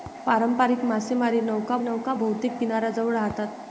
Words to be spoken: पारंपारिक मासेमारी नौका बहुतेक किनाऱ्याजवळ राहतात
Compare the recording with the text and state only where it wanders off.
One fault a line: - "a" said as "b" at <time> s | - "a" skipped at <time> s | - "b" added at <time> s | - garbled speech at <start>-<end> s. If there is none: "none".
- "नौका" added at 1.8 s